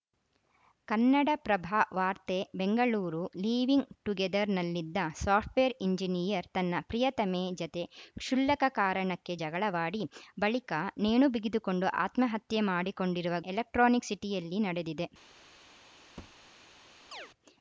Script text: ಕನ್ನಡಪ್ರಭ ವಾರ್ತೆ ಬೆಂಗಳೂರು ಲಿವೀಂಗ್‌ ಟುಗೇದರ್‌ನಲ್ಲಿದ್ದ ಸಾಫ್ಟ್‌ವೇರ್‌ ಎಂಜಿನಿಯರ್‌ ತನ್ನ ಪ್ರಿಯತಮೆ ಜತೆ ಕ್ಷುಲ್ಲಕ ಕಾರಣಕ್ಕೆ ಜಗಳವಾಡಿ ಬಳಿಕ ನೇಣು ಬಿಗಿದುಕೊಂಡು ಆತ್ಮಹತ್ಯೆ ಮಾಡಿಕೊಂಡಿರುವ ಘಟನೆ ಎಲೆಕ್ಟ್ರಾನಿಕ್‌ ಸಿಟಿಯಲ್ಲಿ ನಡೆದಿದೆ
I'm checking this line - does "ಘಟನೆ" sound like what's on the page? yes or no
no